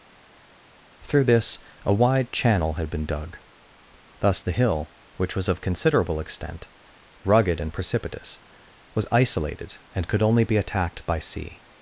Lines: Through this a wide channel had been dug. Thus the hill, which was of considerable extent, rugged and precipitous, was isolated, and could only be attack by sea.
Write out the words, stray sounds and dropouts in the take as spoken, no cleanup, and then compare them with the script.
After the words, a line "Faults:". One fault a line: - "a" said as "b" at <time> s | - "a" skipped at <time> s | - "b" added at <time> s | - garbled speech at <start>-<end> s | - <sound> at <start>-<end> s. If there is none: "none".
Through this a wide channel had been dug. Thus the hill, which was of considerable extent, rugged and precipitous, was isolated, and could only be attacked by sea.
Faults:
- "attack" said as "attacked" at 10.6 s